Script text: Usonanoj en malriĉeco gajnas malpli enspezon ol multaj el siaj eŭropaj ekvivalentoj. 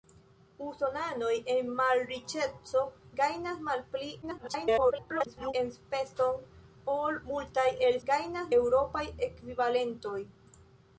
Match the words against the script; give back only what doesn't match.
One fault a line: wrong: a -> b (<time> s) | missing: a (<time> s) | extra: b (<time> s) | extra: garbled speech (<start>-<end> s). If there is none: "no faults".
extra: garbled speech (4.2-5.5 s)
wrong: siaj -> gajnas (8.1 s)